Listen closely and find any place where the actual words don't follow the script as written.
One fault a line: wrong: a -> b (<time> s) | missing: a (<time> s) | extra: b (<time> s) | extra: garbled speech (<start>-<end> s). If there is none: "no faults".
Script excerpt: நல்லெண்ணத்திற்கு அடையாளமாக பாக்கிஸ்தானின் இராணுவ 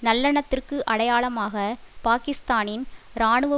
no faults